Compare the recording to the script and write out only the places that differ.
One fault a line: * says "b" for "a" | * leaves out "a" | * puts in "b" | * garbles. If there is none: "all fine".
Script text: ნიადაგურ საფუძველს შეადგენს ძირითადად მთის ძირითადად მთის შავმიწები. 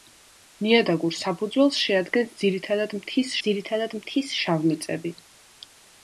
all fine